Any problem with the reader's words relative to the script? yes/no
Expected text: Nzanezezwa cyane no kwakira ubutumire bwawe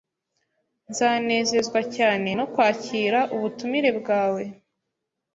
no